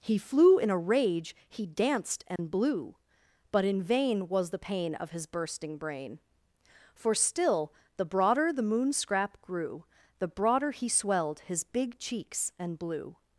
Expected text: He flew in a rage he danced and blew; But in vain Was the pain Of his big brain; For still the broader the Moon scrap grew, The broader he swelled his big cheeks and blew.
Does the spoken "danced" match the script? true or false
true